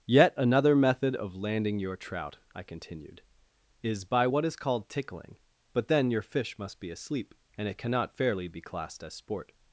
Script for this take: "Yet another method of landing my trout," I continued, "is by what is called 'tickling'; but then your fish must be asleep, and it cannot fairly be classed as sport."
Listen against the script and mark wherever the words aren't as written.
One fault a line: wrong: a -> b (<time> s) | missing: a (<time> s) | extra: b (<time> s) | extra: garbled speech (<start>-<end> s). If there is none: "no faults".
wrong: my -> your (1.8 s)